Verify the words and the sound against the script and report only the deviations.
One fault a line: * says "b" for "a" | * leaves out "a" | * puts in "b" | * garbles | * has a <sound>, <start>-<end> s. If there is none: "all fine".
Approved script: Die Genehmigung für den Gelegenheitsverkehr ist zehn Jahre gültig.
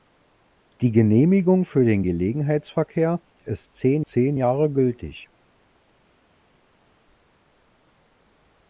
* puts in "zehn"